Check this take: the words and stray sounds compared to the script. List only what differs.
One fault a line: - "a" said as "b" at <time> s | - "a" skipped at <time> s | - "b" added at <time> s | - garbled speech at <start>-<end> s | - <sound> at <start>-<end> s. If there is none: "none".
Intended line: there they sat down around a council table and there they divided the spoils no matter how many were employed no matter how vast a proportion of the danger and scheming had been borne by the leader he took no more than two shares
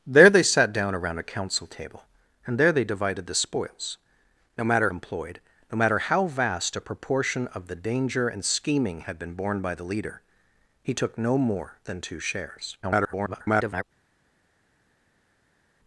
- "how many were" skipped at 4.9 s
- garbled speech at 12.8-13.8 s